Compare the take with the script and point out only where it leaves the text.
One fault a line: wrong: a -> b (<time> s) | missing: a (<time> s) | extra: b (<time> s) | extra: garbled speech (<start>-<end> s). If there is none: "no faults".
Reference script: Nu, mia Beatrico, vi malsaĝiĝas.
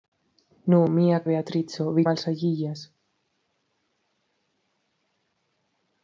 no faults